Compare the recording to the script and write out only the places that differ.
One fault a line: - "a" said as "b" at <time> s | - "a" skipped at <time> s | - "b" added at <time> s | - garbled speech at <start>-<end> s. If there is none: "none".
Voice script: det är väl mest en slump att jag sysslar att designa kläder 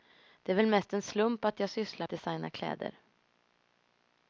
none